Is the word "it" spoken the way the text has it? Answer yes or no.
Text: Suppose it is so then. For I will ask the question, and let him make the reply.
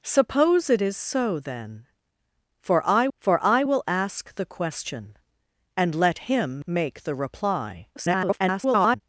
yes